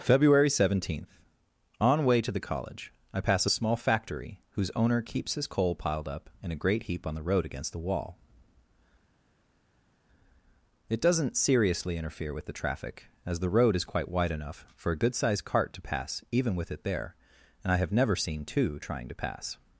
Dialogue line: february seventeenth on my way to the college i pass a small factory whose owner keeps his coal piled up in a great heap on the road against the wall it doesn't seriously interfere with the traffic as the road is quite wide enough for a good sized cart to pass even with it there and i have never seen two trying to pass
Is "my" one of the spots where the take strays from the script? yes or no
yes